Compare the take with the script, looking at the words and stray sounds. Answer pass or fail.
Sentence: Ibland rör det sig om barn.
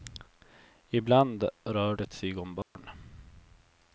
fail